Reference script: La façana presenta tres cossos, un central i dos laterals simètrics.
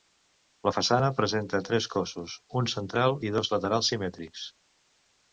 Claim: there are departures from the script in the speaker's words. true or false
false